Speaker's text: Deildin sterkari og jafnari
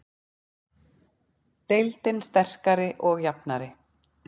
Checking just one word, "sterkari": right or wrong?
right